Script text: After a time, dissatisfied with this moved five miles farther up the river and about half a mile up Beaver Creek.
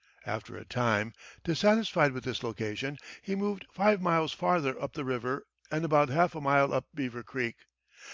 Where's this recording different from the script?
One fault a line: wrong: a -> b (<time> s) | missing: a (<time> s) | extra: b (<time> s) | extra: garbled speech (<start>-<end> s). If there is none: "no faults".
extra: location he (2.4 s)